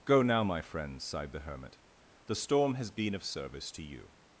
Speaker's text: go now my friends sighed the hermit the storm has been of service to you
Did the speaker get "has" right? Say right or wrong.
right